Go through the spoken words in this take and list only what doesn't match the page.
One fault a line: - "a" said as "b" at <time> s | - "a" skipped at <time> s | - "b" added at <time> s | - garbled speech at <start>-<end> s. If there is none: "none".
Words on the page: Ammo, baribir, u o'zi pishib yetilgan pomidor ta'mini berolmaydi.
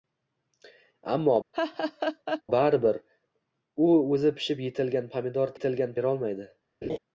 - "ta'mini" said as "yetilgan" at 5.6 s